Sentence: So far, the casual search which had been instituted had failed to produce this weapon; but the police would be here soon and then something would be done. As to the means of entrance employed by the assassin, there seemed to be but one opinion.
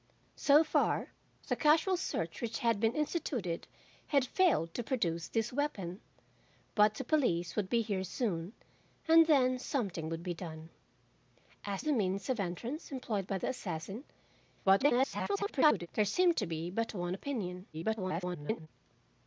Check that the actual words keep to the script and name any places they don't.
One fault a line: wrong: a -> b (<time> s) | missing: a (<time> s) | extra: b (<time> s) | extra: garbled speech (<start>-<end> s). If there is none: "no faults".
missing: to (11.8 s)
extra: garbled speech (14.6-15.9 s)
extra: garbled speech (17.7-18.7 s)